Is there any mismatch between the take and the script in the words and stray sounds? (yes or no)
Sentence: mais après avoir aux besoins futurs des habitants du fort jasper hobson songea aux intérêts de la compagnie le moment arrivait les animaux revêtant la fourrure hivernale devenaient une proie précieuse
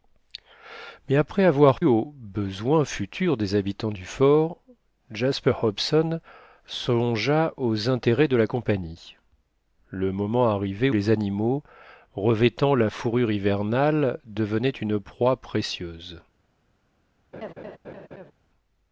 yes